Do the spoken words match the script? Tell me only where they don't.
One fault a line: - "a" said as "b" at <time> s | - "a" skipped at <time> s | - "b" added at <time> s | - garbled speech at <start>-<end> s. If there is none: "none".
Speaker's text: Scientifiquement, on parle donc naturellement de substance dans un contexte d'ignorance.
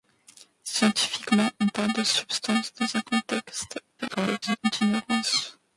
- "donc naturellement" skipped at 1.9 s
- garbled speech at 4.0-4.6 s